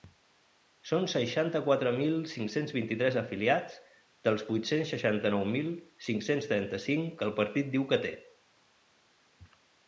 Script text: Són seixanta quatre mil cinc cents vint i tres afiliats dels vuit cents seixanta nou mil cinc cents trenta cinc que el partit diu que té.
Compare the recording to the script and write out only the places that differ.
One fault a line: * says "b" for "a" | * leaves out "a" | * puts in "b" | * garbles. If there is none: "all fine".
all fine